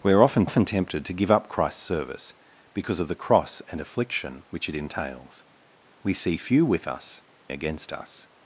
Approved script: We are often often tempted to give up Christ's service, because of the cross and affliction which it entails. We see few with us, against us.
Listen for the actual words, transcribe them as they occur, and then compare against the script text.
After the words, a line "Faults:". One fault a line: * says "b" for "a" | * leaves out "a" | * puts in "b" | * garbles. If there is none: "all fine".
We are often often tempted to give up Christ's service, because of the cross and affliction which it entails. We see few with us, against us.
Faults:
all fine